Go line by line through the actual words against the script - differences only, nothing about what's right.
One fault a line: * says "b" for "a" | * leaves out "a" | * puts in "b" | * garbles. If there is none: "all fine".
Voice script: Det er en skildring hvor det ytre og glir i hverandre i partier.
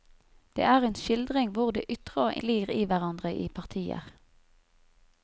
all fine